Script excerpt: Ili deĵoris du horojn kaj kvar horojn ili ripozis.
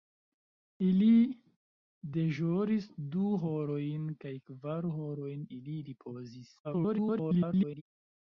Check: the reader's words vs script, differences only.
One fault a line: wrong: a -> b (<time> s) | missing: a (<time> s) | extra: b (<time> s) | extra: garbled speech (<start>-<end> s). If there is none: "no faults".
extra: garbled speech (6.6-7.8 s)